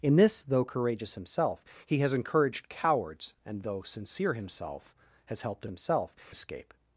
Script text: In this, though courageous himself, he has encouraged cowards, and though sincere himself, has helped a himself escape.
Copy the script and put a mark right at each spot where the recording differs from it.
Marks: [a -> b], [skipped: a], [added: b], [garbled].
In this, though courageous himself, he has encouraged cowards, and though sincere himself, has helped a himself escape.